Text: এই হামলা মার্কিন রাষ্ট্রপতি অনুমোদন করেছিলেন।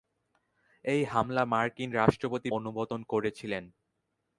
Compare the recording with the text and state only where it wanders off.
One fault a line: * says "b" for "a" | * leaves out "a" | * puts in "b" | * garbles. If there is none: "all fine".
all fine